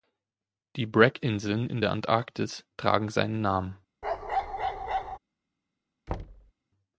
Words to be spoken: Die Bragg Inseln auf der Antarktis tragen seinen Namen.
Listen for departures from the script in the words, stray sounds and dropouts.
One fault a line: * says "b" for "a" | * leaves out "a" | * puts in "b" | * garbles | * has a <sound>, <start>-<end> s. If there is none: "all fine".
* says "in" for "auf"
* has a bark, 4.0-5.2 s
* has a thud, 6.1-6.5 s